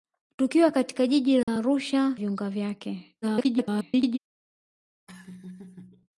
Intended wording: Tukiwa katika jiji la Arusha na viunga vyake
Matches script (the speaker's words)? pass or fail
fail